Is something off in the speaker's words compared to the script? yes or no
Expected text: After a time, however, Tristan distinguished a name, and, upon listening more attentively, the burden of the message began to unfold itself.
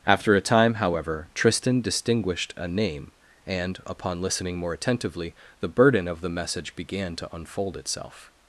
no